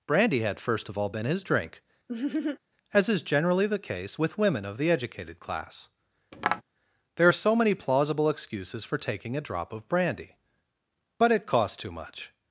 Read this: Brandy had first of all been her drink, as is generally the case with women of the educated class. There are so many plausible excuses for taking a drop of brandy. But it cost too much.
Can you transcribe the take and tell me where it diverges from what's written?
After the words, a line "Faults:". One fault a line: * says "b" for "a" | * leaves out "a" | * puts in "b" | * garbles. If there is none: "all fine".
Brandy had first of all been his drink, as is generally the case with women of the educated class. There are so many plausible excuses for taking a drop of brandy. But it cost too much.
Faults:
* says "his" for "her"